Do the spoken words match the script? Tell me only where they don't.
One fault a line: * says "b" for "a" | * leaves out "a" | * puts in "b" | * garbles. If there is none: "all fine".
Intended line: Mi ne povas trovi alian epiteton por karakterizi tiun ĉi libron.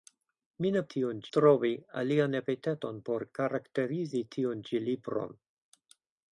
* says "tiun" for "povas"